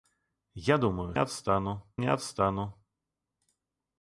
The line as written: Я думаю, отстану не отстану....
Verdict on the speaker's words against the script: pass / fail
pass